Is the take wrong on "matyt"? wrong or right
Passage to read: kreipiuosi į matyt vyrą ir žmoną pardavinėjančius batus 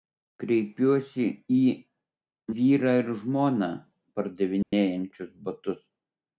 wrong